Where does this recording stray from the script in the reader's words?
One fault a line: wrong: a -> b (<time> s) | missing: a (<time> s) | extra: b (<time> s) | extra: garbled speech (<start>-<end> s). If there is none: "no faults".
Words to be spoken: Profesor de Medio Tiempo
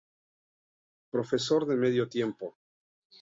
no faults